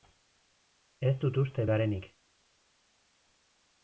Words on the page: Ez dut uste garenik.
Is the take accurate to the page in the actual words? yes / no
yes